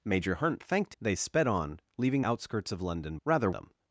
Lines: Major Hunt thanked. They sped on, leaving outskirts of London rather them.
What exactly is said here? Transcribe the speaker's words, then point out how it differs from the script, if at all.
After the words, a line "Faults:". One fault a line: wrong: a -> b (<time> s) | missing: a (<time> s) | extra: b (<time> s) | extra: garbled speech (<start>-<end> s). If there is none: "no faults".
Major Hunt thanked. They sped on, leaving outskirts of London rather them.
Faults:
no faults